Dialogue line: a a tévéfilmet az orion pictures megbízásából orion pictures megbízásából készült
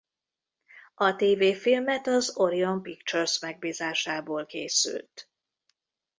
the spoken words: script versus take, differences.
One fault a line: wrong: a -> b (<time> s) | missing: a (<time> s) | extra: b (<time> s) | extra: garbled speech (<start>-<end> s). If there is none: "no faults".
missing: a (1.1 s)
missing: orion pictures megbízásából (4.5 s)